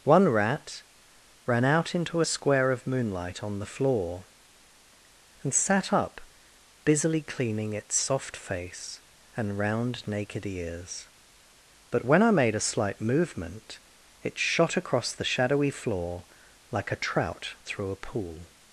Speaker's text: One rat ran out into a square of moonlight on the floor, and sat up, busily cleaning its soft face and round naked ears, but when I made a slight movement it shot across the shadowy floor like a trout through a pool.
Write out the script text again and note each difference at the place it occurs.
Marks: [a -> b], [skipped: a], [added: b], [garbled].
One rat ran out into a square of moonlight on the floor, and sat up, busily cleaning its soft face and round naked ears, but when I made a slight movement it shot across the shadowy floor like a trout through a pool.